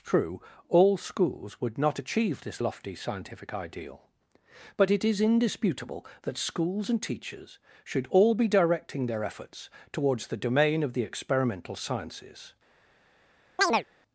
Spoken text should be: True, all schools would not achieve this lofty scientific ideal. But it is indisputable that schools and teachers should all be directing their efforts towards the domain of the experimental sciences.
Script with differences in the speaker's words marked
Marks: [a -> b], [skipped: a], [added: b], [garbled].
True, all schools would not achieve this lofty scientific ideal. But it is indisputable that schools and teachers should all be directing their efforts towards the domain of the experimental sciences.